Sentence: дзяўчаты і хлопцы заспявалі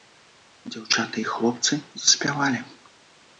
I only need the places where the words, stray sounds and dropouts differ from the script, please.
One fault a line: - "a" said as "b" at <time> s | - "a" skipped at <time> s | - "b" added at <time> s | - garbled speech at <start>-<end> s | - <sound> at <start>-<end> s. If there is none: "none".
none